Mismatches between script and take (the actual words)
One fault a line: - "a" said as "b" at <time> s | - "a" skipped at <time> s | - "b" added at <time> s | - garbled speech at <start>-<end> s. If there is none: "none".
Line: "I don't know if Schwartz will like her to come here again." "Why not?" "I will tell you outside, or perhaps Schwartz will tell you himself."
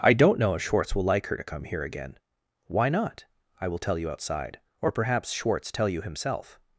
- "will" skipped at 5.7 s